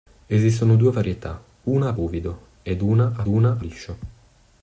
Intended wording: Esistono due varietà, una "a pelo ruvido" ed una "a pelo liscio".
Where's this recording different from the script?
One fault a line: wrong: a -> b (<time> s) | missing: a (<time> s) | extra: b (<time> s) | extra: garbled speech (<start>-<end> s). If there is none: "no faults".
missing: pelo (1.9 s)
wrong: pelo -> una (3.3 s)